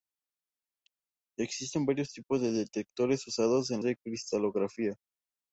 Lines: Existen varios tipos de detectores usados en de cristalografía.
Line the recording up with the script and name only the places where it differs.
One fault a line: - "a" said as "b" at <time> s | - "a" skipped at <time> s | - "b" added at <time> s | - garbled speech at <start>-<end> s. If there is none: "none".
none